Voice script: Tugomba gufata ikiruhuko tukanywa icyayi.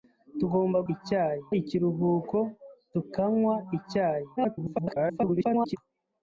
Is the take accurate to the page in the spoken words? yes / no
no